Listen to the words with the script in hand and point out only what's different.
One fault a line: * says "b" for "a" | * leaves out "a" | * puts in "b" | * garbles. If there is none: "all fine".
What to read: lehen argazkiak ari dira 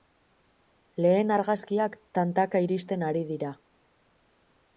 * puts in "tantaka iristen"